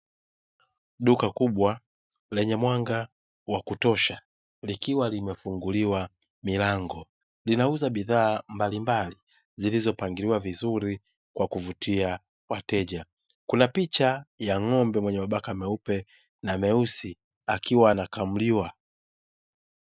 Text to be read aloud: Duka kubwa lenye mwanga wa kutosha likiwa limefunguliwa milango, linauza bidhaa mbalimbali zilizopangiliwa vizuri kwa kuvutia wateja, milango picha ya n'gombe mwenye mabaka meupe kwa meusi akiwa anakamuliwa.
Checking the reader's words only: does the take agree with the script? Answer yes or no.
no